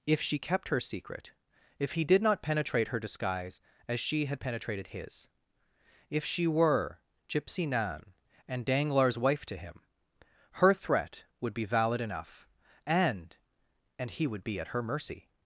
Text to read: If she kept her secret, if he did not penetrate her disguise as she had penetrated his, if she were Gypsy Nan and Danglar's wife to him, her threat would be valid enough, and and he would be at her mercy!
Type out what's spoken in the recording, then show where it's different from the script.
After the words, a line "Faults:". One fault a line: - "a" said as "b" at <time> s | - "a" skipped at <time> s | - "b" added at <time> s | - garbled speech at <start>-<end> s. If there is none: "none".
If she kept her secret, if he did not penetrate her disguise as she had penetrated his, if she were Gypsy Nan and Danglar's wife to him, her threat would be valid enough, and and he would be at her mercy!
Faults:
none